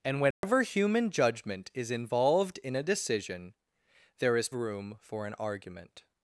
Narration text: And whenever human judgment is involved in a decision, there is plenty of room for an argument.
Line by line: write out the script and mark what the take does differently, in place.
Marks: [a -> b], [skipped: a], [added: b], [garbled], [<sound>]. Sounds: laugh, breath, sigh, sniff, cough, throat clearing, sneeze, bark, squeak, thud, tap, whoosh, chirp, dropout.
And whenever [dropout] human judgment is involved in a decision, there is [skipped: plenty of] room for an argument.